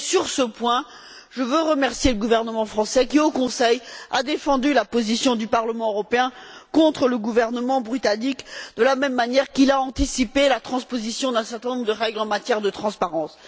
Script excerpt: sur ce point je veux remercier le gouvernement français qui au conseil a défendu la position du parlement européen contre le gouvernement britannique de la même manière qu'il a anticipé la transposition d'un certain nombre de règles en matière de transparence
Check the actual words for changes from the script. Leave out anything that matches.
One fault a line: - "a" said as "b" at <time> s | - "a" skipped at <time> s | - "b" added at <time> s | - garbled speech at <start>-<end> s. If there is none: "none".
none